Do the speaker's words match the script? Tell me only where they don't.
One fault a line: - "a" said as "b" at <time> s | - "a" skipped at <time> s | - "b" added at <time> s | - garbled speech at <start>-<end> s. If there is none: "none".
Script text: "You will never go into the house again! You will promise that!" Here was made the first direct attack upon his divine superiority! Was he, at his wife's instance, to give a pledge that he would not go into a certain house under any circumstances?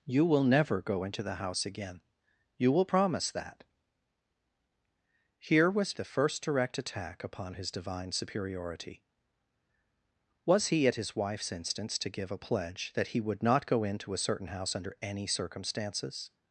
- "made" skipped at 6.0 s